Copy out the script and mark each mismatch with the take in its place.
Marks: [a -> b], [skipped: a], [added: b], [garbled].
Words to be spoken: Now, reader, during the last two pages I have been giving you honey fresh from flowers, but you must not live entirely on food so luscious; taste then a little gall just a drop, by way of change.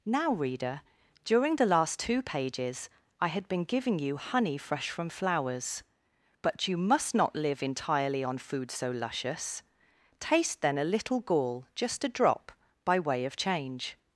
Now, reader, during the last two pages I [have -> had] been giving you honey fresh from flowers, but you must not live entirely on food so luscious; taste then a little gall just a drop, by way of change.